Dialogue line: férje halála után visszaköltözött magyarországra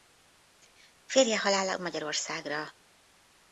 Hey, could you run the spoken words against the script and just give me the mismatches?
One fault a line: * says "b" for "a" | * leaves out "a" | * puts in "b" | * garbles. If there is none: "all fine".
* leaves out "után visszaköltözött"